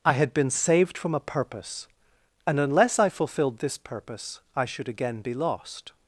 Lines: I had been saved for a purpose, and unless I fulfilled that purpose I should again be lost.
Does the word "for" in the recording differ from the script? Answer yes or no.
yes